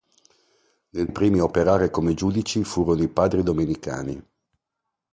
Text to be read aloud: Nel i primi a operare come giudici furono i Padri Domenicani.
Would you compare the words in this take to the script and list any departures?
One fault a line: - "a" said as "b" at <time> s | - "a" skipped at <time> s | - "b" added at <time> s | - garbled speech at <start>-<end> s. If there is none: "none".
none